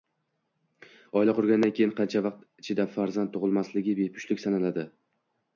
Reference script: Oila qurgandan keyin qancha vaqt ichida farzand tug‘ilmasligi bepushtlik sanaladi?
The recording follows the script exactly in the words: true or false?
true